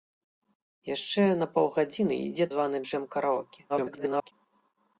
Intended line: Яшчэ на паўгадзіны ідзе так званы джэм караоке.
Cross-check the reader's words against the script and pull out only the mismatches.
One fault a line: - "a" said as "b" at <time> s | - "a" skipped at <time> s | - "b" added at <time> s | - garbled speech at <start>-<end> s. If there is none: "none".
- "так" skipped at 2.5 s
- garbled speech at 3.7-4.3 s